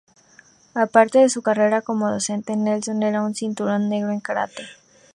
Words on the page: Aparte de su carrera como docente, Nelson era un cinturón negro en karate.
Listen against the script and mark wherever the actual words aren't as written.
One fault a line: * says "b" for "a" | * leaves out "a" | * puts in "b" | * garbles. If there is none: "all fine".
all fine